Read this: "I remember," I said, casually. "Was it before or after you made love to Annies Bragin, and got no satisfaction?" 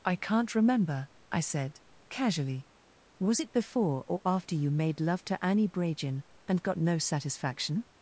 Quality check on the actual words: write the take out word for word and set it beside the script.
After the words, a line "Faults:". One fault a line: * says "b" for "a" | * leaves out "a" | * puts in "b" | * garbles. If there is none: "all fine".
"I can't remember," I said, casually. "Was it before or after you made love to Annie Bragin, and got no satisfaction?"
Faults:
* puts in "can't"
* says "Annie" for "Annies"